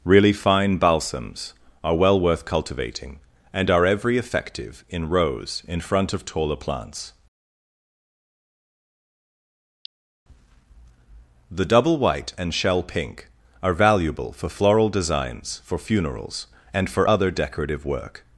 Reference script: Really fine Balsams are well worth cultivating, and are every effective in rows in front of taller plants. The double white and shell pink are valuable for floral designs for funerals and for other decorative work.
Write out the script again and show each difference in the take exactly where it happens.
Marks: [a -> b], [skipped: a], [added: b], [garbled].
Really fine Balsams are well worth cultivating, and are every effective in rows in front of taller plants. The double white and shell pink are valuable for floral designs for funerals and for other decorative work.